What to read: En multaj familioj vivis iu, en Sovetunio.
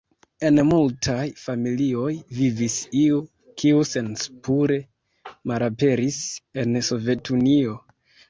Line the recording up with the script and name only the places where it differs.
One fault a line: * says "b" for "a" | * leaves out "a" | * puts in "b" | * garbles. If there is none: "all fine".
* puts in "kiu senspure malaperis"